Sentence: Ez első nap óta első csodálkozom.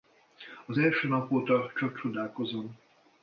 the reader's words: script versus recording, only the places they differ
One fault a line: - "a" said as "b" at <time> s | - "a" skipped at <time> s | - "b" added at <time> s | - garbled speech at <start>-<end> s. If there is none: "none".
- "Ez" said as "Az" at 0.7 s
- "első" said as "csak" at 1.7 s